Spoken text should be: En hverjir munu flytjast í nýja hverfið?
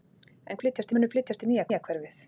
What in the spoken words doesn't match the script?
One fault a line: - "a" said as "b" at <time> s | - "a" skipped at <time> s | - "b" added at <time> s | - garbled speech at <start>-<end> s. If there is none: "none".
- "hverjir" said as "flytjast" at 0.6 s
- "nýja" added at 1.7 s